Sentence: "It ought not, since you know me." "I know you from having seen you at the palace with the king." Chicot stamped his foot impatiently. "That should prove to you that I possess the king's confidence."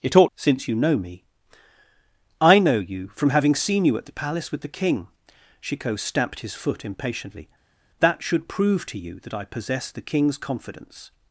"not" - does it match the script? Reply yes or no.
no